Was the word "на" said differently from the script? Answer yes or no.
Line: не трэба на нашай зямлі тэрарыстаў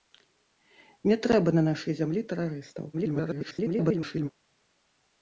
no